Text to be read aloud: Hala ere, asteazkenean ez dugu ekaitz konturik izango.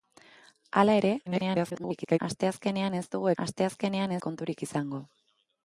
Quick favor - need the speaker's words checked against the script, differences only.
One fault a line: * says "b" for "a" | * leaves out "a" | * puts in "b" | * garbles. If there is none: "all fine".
* garbles
* says "asteazkenean" for "ekaitz"